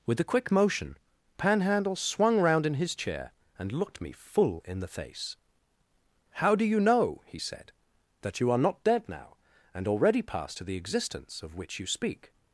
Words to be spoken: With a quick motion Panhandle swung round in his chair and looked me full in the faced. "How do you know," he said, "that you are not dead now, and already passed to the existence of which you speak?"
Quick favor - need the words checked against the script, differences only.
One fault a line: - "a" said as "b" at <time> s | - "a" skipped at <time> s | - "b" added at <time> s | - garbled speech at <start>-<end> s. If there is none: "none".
- "faced" said as "face" at 4.9 s